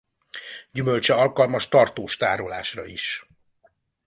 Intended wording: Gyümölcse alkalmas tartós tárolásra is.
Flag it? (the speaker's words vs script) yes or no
no